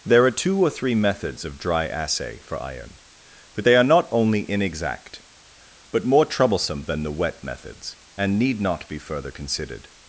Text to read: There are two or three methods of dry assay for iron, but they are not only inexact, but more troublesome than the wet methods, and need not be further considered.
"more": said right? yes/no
yes